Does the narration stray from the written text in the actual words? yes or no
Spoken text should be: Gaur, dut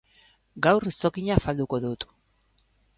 yes